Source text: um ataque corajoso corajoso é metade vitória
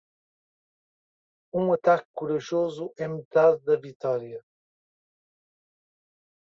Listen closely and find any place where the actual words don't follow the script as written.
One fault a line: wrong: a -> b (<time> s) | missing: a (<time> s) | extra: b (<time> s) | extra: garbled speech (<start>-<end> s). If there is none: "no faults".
missing: corajoso (2.9 s)
extra: da (3.6 s)